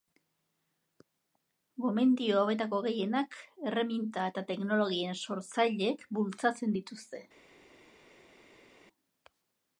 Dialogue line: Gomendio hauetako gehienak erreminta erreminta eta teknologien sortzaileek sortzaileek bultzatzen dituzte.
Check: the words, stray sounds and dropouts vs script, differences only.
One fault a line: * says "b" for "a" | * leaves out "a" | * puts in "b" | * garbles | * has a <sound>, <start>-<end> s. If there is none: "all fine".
* leaves out "erreminta"
* leaves out "sortzaileek"